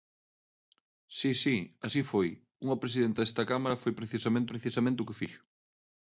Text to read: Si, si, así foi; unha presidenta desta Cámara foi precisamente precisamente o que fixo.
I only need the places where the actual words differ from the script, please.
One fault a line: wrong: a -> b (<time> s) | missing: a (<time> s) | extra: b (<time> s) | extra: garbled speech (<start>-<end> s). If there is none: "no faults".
no faults